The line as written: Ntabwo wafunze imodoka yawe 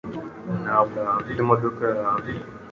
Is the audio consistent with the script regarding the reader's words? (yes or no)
no